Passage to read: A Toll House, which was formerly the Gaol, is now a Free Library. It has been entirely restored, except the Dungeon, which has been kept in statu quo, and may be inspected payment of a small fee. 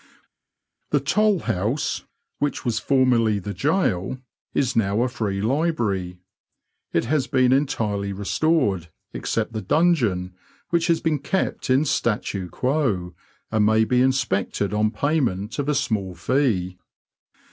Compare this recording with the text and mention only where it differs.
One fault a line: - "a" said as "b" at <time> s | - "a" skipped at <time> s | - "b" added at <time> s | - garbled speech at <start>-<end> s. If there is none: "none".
- "A" said as "The" at 0.9 s
- "on" added at 14.7 s